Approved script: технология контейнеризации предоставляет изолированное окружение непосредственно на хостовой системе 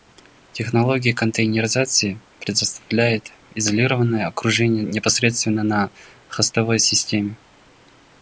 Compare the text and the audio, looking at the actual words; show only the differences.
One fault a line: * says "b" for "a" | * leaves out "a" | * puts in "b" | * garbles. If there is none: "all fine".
all fine